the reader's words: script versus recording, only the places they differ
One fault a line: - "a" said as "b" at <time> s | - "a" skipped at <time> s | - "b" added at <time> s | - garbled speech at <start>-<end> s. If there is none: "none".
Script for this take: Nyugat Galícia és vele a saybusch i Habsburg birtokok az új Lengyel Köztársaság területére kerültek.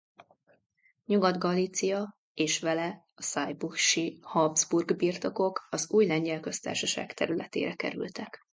none